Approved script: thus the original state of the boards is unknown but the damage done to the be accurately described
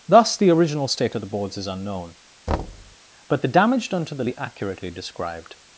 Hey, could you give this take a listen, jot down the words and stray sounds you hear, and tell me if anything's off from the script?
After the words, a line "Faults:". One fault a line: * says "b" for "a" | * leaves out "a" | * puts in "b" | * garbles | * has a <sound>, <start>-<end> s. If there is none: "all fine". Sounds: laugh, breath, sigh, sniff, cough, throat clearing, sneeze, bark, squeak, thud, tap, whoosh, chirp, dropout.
thus the original state of the boards is unknown but the damage done to the be accurately described
Faults:
* has a thud, 2.5-3.0 s